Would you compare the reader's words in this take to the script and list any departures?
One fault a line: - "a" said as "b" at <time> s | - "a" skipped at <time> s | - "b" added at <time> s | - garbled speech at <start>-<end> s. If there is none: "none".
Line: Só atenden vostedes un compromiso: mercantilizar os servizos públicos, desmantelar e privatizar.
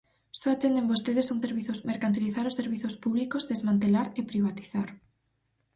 - "compromiso" said as "servizos" at 1.4 s